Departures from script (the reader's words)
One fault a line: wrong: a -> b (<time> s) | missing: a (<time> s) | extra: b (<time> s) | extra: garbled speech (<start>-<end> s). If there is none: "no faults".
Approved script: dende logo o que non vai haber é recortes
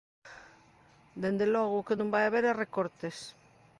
no faults